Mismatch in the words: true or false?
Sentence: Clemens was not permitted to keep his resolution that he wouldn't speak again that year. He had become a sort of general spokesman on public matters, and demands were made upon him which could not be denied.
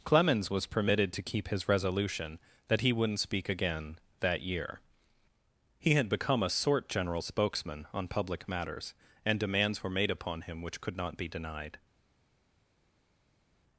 true